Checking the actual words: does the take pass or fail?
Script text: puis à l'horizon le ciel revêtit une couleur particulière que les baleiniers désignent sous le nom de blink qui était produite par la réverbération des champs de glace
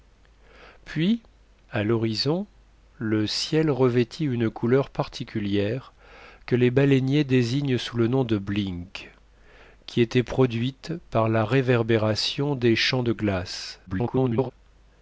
fail